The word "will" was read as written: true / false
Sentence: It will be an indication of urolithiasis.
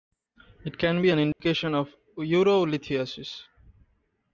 false